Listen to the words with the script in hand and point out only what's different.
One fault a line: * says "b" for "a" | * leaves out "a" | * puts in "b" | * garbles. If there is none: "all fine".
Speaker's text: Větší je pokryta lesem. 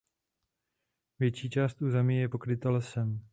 * puts in "část území"